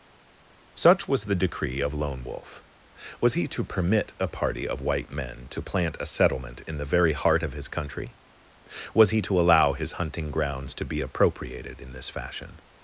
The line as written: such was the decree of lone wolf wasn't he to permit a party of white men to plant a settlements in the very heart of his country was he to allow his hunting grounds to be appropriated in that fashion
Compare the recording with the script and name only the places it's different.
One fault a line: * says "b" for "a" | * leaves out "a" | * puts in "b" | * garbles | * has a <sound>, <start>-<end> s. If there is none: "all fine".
* says "was" for "wasn't"
* says "settlement" for "settlements"
* says "this" for "that"